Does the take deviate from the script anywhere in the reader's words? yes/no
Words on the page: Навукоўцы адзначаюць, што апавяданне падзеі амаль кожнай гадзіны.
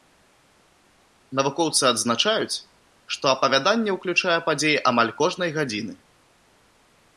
yes